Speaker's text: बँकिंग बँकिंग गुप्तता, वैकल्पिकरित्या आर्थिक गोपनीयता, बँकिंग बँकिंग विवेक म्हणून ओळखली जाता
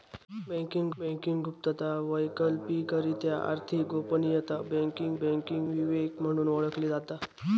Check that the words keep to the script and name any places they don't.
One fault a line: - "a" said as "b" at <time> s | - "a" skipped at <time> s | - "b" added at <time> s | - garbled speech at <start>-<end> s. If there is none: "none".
none